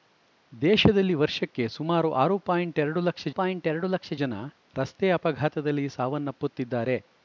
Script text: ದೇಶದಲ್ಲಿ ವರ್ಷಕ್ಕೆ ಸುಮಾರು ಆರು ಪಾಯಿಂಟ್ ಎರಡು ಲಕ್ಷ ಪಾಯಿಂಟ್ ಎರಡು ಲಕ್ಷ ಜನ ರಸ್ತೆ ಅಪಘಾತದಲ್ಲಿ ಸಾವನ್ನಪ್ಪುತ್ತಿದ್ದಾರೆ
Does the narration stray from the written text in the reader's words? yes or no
no